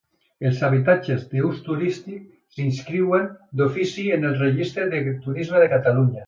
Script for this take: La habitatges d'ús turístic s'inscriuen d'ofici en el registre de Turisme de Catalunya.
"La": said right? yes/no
no